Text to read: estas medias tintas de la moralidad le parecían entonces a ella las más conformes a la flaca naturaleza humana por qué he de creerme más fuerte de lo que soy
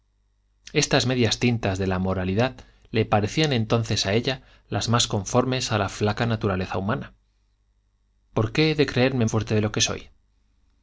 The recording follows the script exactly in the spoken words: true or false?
false